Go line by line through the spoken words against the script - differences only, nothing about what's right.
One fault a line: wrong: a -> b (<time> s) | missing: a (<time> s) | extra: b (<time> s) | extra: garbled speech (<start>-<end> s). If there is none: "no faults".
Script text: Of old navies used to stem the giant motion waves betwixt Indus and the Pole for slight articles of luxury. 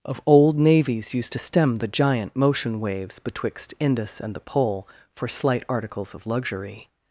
no faults